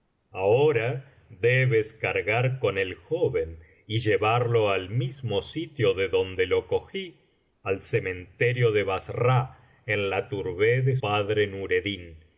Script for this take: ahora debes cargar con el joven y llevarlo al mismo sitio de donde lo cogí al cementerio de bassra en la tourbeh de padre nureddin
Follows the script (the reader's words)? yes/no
yes